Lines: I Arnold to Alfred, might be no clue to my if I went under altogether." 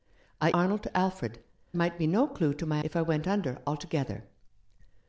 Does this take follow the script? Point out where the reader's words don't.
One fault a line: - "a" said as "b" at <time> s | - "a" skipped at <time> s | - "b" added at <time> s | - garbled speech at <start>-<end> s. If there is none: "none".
none